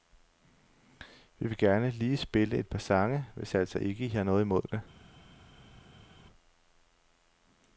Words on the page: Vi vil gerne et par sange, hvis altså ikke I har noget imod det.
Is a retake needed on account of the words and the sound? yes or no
yes